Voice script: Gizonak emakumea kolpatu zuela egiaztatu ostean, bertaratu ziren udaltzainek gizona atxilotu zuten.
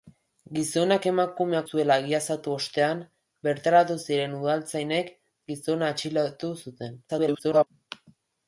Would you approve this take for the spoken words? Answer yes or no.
no